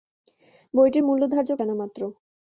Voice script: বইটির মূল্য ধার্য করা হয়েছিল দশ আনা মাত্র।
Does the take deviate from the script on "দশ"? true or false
true